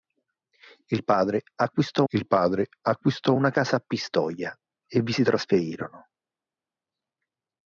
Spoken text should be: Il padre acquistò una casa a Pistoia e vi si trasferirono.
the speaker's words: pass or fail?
fail